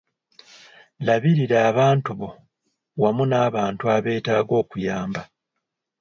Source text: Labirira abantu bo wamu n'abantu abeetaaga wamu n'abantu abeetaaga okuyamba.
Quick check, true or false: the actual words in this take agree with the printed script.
false